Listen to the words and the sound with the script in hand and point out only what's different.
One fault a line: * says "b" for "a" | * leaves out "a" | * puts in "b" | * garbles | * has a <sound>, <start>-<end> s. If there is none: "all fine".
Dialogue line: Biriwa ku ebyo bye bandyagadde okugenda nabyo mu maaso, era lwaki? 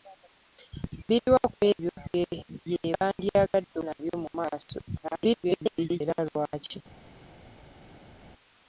* leaves out "okugenda"
* garbles